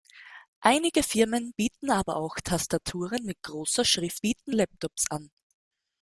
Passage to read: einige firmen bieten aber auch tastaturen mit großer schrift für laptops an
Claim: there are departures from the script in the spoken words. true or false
true